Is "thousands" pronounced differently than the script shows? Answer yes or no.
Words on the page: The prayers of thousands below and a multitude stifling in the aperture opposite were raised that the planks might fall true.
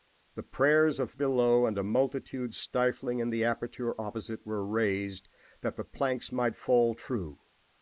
yes